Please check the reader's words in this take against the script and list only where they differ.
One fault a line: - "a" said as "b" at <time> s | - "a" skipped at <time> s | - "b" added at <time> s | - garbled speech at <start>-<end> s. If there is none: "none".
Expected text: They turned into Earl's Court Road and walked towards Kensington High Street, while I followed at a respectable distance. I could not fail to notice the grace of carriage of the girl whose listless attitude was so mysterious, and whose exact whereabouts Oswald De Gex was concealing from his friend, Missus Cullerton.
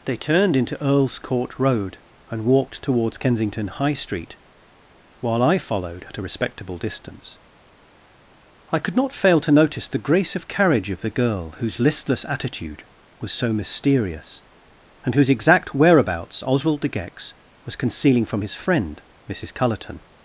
none